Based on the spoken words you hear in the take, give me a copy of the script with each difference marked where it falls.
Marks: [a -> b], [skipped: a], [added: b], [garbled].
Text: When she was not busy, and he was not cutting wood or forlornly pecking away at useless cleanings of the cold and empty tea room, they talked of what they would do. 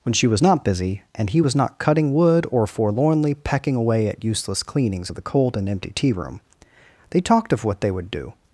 When she was not busy, and he was not cutting wood or forlornly pecking away at useless cleanings of the cold and empty tea room, they talked of what they would do.